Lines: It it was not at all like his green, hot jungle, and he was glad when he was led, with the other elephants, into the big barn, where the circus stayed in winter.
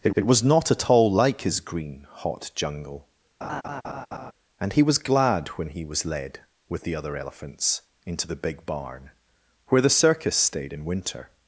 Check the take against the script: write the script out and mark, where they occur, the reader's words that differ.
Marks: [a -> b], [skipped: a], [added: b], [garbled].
It it was not at all like his green, hot jungle, and he was glad when he was led, with the other elephants, into the big barn, where the circus stayed in winter.